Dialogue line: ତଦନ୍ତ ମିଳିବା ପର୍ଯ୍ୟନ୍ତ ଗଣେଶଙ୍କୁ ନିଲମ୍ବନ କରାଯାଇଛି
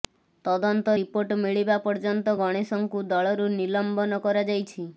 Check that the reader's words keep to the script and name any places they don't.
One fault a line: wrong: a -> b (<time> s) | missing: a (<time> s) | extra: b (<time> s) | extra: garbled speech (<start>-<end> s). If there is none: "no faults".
extra: ରିପୋର୍ଟ (1.0 s)
extra: ଦଳରୁ (3.1 s)